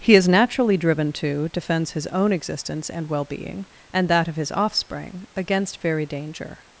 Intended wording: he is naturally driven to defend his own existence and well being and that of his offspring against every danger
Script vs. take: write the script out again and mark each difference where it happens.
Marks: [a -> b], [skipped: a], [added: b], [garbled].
he is naturally driven to [defend -> defends] his own existence and well being and that of his offspring against [every -> very] danger